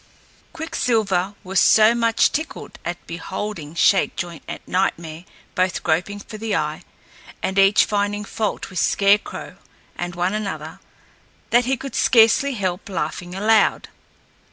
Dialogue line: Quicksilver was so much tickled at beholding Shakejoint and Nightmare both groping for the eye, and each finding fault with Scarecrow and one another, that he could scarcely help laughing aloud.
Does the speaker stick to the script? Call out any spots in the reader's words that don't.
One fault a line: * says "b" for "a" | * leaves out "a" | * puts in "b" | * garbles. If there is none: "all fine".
all fine